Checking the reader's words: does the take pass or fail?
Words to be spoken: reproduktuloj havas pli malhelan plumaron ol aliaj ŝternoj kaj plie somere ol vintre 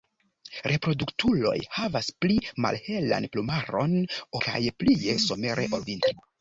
fail